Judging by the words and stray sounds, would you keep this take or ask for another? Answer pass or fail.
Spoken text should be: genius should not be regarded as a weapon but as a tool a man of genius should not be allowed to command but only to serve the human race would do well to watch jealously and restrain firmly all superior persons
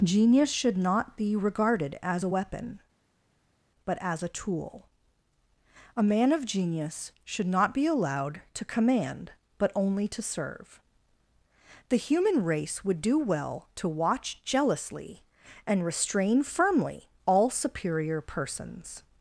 pass